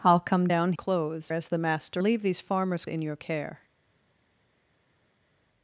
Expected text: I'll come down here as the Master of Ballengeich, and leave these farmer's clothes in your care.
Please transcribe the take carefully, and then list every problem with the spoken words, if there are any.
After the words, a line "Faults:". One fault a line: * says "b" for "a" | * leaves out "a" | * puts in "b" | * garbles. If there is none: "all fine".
I'll come down clothes as the Master leave these farmer's in your care.
Faults:
* says "clothes" for "here"
* leaves out "of Ballengeich and"
* leaves out "clothes"